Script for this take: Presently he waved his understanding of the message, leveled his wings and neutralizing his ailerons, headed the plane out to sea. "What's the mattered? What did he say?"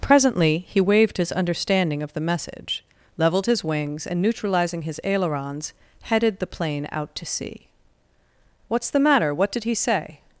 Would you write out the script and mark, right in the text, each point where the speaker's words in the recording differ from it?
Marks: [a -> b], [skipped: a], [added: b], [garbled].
Presently he waved his understanding of the message, leveled his wings and neutralizing his ailerons, headed the plane out to sea. "What's the [mattered? -> matter] What did he say?"